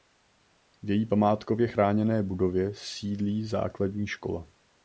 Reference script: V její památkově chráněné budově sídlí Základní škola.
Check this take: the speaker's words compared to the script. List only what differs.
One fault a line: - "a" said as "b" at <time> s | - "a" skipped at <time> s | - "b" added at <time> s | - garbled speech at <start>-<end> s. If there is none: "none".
none